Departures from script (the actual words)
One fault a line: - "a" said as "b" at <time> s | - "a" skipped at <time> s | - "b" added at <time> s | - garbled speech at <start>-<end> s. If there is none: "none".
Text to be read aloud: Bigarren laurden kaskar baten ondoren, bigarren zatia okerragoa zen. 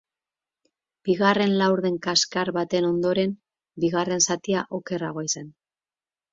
none